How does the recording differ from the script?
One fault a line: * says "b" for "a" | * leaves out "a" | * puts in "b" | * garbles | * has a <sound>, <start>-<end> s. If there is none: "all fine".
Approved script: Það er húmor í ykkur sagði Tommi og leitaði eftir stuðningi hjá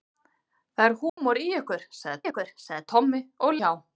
* has a dropout, 1.1-1.2 s
* puts in "ykkur sagði"
* leaves out "leitaði eftir stuðningi"